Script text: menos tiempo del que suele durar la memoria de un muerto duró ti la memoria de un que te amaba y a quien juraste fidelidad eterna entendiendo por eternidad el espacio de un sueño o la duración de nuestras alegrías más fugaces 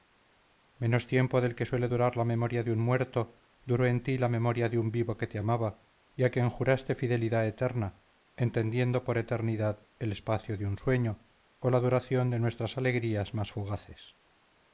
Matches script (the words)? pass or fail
fail